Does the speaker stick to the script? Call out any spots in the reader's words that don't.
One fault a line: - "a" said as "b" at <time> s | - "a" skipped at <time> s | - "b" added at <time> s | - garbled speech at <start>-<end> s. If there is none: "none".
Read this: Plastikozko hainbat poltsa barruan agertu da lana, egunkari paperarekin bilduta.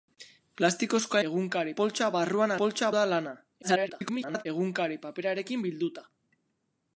- "hainbat" said as "egunkari" at 1.3 s
- "agertu" said as "poltsa" at 2.6 s
- garbled speech at 3.6-4.5 s